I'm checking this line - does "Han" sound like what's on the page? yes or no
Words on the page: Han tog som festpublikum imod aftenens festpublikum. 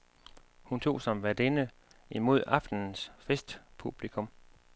no